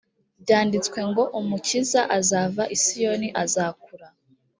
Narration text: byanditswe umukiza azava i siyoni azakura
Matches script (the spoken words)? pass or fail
fail